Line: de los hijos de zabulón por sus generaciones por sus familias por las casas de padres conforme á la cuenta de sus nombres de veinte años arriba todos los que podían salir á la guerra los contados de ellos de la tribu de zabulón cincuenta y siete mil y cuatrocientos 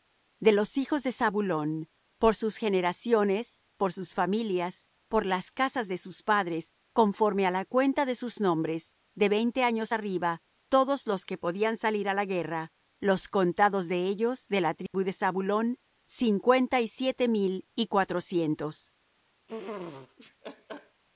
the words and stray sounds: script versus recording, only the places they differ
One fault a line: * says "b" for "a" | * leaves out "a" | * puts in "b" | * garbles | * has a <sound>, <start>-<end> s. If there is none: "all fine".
* puts in "sus"
* has a dropout, 14.9-14.9 s
* has a laugh, 19.5-21.0 s